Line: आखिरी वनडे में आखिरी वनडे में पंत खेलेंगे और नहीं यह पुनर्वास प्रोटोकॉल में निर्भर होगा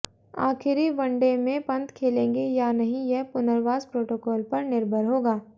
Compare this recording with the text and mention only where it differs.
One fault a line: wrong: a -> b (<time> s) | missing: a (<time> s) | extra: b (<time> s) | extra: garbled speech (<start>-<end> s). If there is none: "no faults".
missing: आखिरी वनडे में (1.6 s)
wrong: और -> या (2.5 s)
wrong: में -> पर (4.5 s)